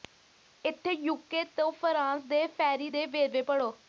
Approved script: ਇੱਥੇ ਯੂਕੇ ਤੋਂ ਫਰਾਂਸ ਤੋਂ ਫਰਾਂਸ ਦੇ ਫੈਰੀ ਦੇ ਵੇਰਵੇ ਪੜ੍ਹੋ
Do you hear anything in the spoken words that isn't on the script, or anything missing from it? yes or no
yes